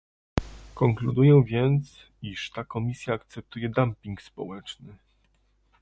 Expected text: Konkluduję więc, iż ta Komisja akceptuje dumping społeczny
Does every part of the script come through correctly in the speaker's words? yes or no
yes